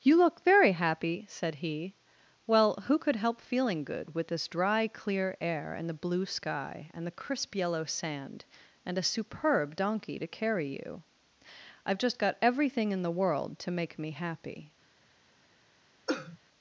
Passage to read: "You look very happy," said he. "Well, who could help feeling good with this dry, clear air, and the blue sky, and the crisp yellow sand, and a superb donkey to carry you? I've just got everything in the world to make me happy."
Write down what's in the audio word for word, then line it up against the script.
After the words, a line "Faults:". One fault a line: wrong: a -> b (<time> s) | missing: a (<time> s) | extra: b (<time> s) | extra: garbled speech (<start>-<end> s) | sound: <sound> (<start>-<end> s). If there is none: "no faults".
"You look very happy," said he. "Well, who could help feeling good with this dry, clear air, and the blue sky, and the crisp yellow sand, and a superb donkey to carry you? I've just got everything in the world to make me happy."
Faults:
sound: cough (16.1-16.4 s)